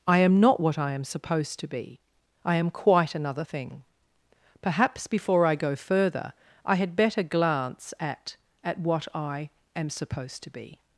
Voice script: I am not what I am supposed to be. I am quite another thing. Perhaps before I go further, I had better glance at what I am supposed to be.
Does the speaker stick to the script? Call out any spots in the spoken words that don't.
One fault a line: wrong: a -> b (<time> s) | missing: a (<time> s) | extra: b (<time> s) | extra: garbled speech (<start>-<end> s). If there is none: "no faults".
extra: at (8.6 s)